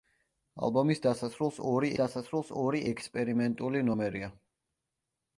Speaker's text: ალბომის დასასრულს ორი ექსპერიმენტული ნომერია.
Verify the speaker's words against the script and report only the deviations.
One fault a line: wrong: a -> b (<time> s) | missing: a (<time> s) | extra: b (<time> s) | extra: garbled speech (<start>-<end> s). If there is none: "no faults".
extra: დასასრულს ორი (2.0 s)